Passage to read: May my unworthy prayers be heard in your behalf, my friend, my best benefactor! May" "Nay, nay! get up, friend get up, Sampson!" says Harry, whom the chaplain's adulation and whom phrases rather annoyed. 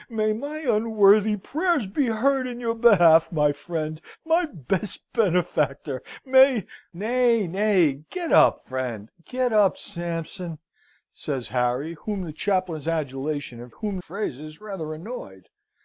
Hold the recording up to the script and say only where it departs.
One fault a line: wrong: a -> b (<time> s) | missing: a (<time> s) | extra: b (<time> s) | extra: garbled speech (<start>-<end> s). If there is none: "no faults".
no faults